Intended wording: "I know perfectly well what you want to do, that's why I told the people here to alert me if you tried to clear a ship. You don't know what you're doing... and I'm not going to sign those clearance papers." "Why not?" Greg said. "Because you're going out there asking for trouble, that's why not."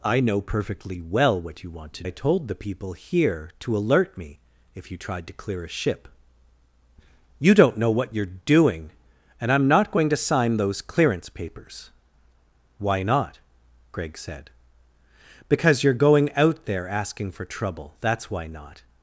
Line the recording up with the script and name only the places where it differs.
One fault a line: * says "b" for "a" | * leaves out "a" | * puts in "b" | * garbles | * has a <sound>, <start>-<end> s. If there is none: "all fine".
* leaves out "do that's why"